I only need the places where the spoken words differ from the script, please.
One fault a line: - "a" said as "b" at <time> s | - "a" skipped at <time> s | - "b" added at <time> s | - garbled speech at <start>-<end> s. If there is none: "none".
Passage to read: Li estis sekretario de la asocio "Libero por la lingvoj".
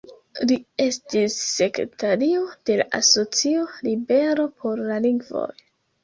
none